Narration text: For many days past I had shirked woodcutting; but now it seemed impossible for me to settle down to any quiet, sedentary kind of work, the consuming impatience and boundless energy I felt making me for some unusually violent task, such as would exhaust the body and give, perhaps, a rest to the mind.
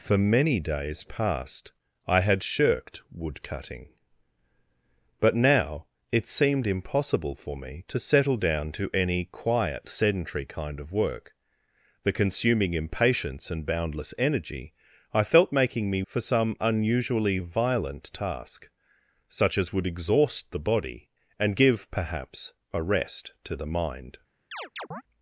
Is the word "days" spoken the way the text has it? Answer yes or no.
yes